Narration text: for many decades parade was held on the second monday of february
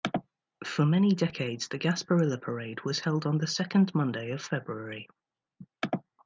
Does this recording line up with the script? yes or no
no